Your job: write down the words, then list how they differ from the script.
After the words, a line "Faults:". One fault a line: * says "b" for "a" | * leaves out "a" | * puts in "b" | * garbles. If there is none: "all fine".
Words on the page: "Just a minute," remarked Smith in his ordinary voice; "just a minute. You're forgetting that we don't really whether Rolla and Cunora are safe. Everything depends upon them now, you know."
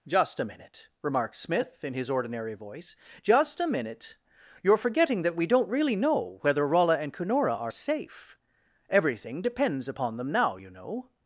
"Just a minute," remarked Smith in his ordinary voice; "just a minute. You're forgetting that we don't really know whether Rolla and Cunora are safe. Everything depends upon them now, you know."
Faults:
* puts in "know"